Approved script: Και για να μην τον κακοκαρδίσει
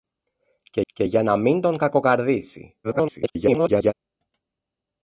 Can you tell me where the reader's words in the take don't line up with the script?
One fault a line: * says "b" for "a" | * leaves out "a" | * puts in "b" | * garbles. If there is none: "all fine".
* puts in "και"
* garbles